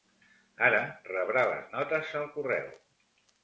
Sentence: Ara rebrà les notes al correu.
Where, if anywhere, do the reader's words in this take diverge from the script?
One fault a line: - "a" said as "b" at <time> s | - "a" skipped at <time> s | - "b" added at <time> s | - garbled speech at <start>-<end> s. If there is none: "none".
none